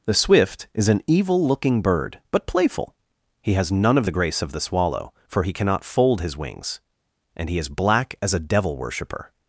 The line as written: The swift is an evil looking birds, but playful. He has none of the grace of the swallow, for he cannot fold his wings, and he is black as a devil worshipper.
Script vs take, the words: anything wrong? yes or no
yes